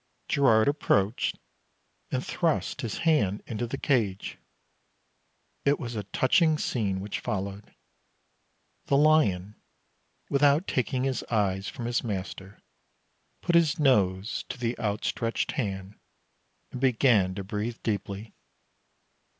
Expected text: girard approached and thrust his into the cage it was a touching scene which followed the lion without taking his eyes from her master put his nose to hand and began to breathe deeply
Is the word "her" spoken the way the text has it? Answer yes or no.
no